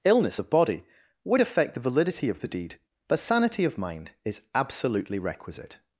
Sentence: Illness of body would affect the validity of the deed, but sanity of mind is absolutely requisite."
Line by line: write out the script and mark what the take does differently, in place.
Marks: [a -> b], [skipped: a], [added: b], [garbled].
Illness of body would affect the validity of the deed, but sanity of mind is absolutely requisite."